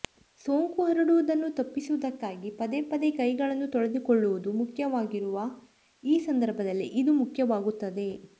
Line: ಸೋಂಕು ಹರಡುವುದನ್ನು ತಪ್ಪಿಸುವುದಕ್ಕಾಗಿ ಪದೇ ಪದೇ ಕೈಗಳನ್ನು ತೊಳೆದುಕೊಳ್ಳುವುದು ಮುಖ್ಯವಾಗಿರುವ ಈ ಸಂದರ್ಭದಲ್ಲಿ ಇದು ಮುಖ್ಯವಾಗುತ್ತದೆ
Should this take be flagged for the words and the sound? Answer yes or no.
no